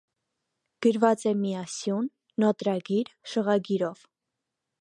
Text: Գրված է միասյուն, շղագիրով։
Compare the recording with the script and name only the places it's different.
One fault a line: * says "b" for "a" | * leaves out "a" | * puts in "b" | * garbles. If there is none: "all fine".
* puts in "նոտրգիր"